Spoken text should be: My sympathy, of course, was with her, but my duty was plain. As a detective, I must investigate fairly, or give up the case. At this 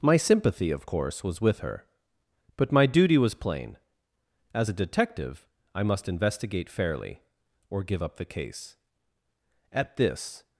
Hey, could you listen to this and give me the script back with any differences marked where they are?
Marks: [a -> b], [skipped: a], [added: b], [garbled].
My sympathy, of course, was with her, but my duty was plain. As a detective, I must investigate fairly, or give up the case. At this